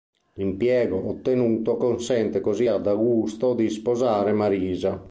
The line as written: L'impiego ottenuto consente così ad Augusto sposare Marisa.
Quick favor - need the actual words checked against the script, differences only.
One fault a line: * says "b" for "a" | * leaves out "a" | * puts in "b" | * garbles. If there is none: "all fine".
* puts in "di"